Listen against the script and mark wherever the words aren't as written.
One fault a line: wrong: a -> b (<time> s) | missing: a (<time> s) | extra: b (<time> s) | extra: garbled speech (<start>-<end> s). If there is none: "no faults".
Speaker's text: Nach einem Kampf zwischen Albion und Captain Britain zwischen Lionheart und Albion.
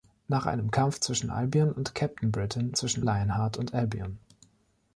no faults